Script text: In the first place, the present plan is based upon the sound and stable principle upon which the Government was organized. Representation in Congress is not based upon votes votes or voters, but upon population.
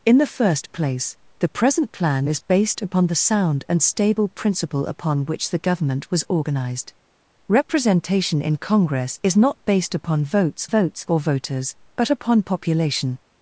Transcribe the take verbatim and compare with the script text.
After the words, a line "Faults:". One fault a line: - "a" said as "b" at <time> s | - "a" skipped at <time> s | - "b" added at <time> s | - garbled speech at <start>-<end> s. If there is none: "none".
In the first place, the present plan is based upon the sound and stable principle upon which the Government was organized. Representation in Congress is not based upon votes votes or voters, but upon population.
Faults:
none